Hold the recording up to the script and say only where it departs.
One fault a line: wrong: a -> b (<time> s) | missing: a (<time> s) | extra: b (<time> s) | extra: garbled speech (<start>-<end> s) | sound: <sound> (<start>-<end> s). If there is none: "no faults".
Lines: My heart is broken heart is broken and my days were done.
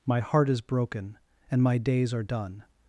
missing: heart is broken (1.2 s)
wrong: were -> are (2.1 s)